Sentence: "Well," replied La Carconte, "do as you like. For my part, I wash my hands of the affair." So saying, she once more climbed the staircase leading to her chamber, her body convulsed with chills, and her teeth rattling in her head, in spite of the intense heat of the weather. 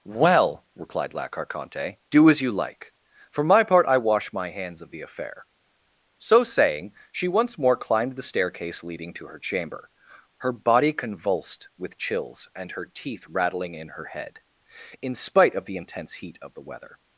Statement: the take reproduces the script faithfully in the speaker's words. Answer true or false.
true